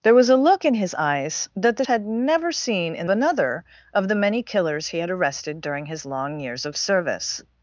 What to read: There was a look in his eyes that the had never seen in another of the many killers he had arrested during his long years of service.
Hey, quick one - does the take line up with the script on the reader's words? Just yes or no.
yes